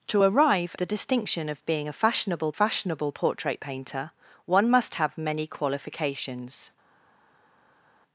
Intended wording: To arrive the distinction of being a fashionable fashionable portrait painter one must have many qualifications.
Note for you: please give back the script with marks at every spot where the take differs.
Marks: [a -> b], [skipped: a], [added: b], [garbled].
To arrive the distinction of being a fashionable fashionable portrait painter one must have many qualifications.